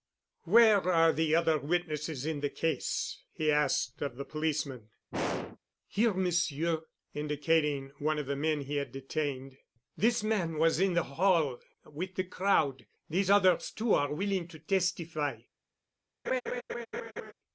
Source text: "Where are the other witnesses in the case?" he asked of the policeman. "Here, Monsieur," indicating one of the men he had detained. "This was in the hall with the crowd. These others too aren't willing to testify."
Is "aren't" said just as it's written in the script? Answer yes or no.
no